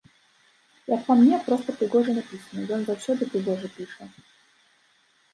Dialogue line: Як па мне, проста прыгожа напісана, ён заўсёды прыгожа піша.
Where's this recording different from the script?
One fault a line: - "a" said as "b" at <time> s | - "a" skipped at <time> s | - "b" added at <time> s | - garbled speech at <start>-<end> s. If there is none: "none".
none